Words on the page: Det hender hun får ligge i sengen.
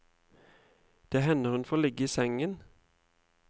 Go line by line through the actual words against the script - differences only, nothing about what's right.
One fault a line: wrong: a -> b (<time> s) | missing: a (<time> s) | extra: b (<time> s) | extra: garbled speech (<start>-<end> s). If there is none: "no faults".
no faults